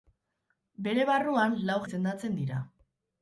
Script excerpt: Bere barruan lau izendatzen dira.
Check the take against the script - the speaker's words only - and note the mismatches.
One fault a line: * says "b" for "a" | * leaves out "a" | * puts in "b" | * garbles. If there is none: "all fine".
all fine